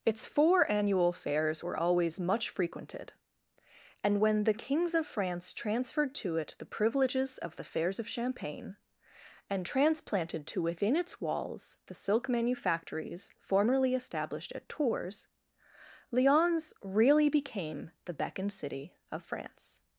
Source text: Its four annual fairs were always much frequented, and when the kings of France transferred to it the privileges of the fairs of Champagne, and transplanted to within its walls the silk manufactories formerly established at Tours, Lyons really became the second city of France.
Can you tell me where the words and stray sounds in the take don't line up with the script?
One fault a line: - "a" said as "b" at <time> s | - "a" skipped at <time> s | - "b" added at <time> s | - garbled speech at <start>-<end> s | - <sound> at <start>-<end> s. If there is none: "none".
- "second" said as "beckoned" at 18.1 s